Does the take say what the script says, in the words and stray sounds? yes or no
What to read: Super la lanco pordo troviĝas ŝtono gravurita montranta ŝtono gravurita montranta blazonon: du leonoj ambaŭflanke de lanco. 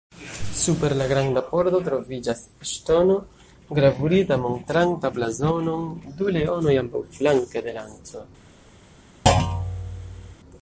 no